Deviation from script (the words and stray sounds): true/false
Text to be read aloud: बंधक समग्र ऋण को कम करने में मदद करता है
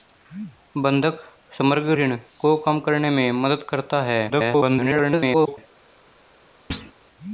true